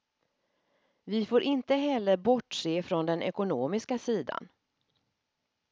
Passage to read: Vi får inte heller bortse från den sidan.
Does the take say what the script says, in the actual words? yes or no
no